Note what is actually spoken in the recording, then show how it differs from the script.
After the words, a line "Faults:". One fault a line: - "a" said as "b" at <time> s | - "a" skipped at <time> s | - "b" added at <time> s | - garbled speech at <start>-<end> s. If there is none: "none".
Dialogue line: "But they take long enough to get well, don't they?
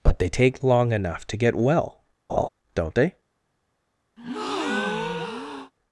"But they take long enough to get well, don't they?
Faults:
none